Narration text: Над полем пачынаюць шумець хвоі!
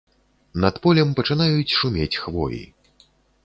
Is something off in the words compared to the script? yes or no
no